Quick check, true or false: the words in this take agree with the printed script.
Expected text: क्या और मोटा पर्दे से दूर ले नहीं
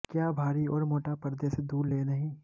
false